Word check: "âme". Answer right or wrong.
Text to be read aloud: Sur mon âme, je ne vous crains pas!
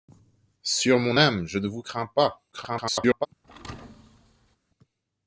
right